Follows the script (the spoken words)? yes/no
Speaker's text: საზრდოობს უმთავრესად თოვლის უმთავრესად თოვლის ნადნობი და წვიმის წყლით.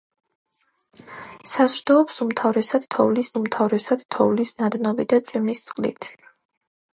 yes